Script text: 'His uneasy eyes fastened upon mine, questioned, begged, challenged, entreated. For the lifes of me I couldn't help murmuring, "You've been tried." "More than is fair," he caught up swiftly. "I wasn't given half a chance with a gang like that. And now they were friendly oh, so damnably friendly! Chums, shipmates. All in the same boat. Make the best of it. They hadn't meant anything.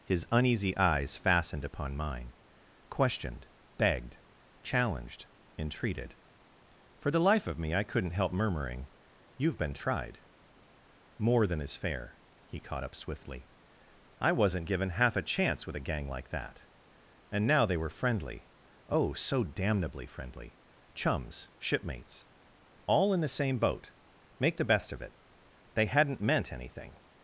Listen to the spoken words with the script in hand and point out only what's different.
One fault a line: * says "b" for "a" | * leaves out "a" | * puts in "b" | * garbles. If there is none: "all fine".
* says "life" for "lifes"